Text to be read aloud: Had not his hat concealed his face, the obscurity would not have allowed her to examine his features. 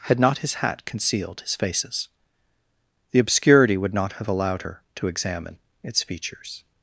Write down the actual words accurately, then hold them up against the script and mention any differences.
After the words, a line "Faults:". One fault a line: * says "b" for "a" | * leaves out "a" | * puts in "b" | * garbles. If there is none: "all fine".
Had not his hat concealed his faces, the obscurity would not have allowed her to examine its features.
Faults:
* says "faces" for "face"
* says "its" for "his"